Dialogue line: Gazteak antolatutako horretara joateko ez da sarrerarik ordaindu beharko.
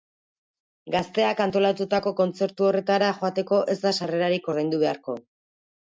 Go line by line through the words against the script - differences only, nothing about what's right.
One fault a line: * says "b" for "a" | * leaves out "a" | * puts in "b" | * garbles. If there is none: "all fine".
* puts in "kontzertu"